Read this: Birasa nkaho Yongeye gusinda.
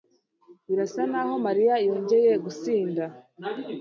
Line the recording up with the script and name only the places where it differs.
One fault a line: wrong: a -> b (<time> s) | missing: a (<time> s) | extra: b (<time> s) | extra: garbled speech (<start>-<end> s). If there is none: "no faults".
extra: Mariya (1.4 s)